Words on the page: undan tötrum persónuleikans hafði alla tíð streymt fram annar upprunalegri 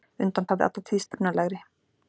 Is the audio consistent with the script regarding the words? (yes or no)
no